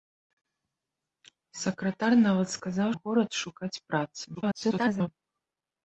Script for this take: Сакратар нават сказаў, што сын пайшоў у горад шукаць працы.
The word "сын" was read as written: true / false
false